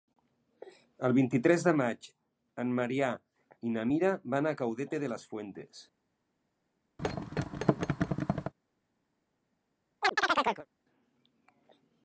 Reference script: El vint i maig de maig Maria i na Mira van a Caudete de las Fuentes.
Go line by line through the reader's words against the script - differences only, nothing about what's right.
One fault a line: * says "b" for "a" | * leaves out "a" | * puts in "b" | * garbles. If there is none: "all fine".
* says "tres" for "maig"
* puts in "en"